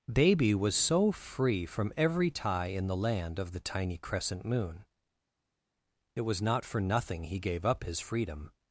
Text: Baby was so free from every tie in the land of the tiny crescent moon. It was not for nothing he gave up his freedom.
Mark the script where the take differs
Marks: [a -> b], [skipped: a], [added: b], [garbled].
Baby was so free from every tie in the land of the tiny crescent moon. It was not for nothing he gave up his freedom.